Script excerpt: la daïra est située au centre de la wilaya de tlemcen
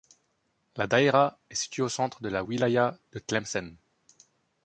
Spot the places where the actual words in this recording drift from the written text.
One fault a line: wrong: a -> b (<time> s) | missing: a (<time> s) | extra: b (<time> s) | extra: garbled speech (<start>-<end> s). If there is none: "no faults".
no faults